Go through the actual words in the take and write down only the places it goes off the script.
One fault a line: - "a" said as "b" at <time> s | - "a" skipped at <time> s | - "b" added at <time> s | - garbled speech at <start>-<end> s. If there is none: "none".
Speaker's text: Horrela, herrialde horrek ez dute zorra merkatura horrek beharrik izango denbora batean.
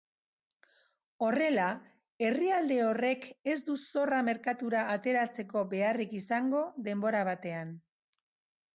- "dute" said as "du" at 3.7 s
- "horrek" said as "ateratzeko" at 4.9 s